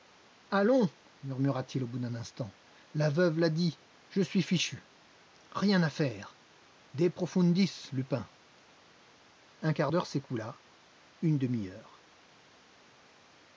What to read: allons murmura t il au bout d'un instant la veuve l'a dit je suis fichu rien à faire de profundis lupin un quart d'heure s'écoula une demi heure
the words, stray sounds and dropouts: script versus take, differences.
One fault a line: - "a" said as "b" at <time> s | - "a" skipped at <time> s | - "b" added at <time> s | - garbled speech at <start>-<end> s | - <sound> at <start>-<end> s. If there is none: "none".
none